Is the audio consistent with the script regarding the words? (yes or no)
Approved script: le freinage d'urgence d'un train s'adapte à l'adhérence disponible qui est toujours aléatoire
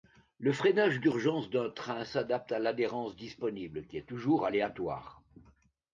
yes